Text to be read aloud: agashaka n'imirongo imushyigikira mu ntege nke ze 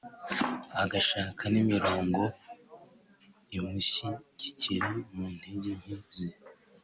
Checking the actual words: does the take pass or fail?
pass